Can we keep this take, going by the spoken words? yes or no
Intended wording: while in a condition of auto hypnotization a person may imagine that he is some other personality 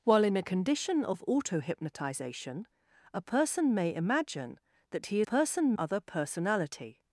no